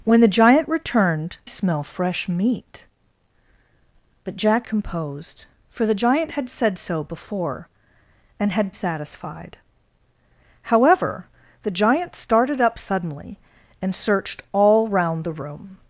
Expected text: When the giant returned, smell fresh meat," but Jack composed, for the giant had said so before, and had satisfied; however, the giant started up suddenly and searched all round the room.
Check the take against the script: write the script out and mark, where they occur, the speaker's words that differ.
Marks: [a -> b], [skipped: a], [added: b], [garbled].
When the giant returned, smell fresh meat," but Jack composed, for the giant had said so before, and had satisfied; however, the giant started up suddenly and searched all round the room.